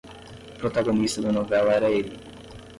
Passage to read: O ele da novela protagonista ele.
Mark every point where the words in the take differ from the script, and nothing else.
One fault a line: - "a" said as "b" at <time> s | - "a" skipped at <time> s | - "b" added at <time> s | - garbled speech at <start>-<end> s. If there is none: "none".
- "ele" said as "protagonista" at 0.6 s
- "protagonista" said as "era" at 1.7 s